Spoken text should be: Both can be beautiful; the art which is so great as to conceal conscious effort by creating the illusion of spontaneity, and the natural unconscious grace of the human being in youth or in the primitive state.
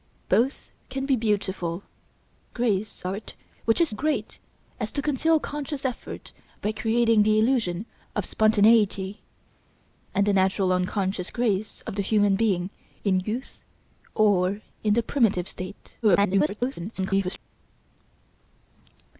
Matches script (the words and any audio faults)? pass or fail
fail